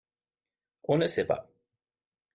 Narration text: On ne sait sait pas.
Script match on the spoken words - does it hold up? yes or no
no